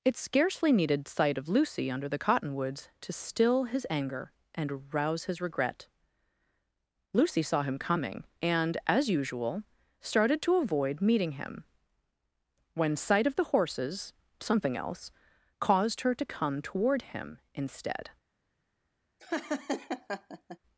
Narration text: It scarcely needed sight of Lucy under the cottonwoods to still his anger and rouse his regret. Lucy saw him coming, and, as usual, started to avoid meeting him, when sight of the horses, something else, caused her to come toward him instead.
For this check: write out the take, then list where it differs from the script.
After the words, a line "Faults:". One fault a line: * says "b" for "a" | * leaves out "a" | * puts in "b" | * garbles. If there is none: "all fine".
It scarcely needed sight of Lucy under the cottonwoods to still his anger and rouse his regret. Lucy saw him coming, and, as usual, started to avoid meeting him, when sight of the horses, something else, caused her to come toward him instead.
Faults:
all fine